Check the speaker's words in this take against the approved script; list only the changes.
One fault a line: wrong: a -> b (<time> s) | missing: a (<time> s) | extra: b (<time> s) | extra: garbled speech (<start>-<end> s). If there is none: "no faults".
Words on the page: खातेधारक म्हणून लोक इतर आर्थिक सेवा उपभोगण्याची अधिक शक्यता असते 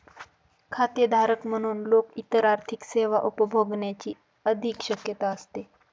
no faults